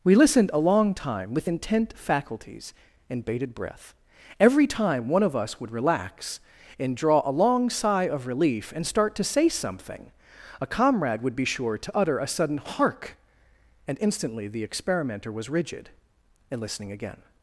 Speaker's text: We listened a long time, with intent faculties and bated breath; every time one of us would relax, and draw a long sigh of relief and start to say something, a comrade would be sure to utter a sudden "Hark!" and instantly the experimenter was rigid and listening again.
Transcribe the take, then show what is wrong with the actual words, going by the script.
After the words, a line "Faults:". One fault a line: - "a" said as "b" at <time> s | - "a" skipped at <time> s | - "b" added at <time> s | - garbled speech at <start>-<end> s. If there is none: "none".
We listened a long time, with intent faculties and bated breath; every time one of us would relax, and draw a long sigh of relief and start to say something, a comrade would be sure to utter a sudden "Hark!" and instantly the experimenter was rigid and listening again.
Faults:
none